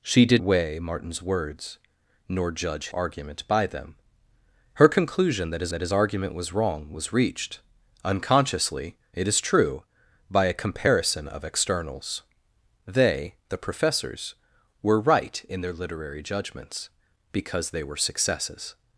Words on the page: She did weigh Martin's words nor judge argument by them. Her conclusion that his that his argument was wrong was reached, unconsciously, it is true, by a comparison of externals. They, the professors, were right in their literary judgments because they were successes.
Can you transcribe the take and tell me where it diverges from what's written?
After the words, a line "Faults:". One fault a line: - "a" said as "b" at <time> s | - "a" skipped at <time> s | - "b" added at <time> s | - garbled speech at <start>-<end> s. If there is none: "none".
She did weigh Martin's words nor judge argument by them. Her conclusion that his that his argument was wrong was reached, unconsciously, it is true, by a comparison of externals. They, the professors, were right in their literary judgments because they were successes.
Faults:
none